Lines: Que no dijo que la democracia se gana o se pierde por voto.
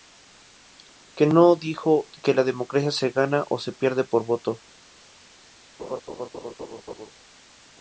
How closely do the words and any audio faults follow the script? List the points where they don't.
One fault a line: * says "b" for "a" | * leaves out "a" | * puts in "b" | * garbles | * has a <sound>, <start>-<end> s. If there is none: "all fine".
* has a laugh, 5.8-7.1 s